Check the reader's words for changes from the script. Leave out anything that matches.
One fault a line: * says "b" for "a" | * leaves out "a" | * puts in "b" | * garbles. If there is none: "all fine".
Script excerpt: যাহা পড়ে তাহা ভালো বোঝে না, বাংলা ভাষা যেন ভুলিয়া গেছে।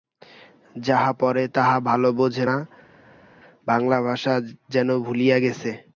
all fine